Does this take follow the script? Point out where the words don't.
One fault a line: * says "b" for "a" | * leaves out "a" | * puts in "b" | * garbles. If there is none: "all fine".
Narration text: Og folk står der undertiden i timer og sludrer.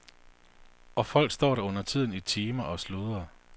all fine